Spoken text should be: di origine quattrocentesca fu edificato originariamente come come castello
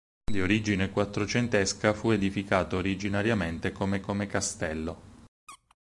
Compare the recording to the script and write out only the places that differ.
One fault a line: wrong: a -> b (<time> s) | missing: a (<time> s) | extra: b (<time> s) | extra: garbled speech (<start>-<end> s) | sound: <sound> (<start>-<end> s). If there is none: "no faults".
sound: squeak (5.5-5.8 s)